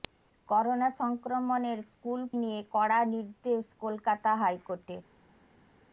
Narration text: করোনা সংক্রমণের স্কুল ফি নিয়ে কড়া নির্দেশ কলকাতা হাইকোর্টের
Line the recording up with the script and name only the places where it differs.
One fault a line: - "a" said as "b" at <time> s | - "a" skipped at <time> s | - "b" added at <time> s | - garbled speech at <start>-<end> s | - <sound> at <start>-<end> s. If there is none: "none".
- "ফি" skipped at 2.2 s